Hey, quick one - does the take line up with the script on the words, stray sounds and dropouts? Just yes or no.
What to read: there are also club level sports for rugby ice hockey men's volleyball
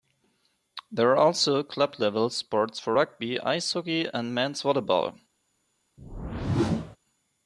no